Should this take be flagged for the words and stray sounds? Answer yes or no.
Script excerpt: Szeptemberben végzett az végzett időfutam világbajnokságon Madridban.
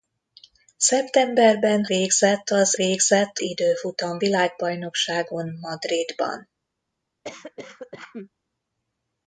yes